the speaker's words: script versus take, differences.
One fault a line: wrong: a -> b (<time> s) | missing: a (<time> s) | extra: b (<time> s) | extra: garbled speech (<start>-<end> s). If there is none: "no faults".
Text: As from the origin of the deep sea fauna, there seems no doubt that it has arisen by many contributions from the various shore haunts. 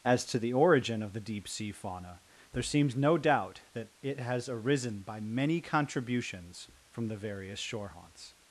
wrong: from -> to (0.2 s)